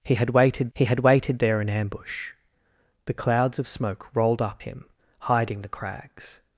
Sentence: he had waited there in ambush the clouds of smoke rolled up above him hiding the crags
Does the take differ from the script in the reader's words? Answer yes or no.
yes